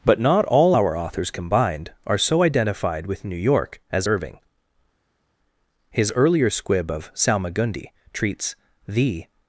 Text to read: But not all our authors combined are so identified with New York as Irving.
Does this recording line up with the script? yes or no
no